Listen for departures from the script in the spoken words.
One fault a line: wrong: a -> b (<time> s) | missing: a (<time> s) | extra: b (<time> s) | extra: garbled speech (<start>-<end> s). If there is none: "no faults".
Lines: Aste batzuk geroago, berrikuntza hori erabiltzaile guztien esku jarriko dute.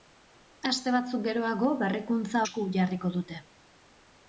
missing: hori erabiltzaile guztien (2.4 s)